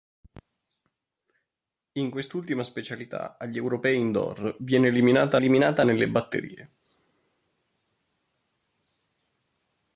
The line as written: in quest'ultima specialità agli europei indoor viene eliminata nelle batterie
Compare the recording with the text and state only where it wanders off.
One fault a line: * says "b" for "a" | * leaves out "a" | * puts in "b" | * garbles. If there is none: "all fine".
* puts in "eliminata"